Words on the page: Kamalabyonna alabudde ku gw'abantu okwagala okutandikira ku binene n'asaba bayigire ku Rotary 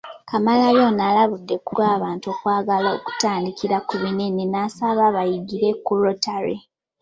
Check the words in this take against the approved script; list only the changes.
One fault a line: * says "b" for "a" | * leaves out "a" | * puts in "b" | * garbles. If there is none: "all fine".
all fine